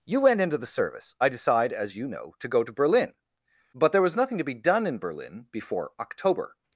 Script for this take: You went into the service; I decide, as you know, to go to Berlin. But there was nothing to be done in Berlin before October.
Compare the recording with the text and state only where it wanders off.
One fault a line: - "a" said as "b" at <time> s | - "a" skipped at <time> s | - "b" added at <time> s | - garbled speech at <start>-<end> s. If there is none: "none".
none